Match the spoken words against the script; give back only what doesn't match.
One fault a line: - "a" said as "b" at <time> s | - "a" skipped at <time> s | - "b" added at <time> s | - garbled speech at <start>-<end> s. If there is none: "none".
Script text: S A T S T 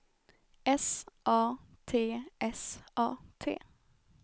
- "A" added at 3.0 s